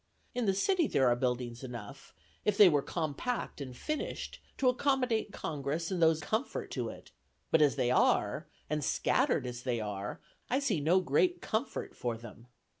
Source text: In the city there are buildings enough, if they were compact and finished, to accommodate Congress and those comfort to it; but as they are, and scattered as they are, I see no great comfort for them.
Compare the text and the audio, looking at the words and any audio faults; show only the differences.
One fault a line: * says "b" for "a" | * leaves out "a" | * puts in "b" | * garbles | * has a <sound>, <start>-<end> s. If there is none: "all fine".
all fine